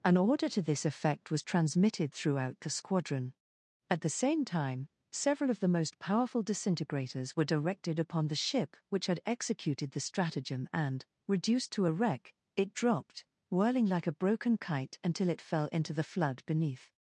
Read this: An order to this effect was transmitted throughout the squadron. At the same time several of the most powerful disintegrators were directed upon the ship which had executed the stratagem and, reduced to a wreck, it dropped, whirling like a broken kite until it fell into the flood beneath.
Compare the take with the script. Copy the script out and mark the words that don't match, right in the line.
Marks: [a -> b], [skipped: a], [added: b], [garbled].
An order to this effect was transmitted throughout the squadron. At the same time several of the most powerful disintegrators were directed upon the ship which had executed the stratagem and, reduced to a wreck, it dropped, whirling like a broken kite until it fell into the flood beneath.